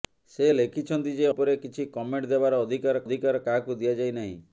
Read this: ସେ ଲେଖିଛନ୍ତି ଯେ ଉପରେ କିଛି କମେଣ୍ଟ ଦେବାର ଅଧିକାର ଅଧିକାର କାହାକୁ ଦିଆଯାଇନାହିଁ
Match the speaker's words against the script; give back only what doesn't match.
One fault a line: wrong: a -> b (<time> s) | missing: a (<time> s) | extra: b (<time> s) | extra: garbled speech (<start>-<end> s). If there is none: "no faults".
no faults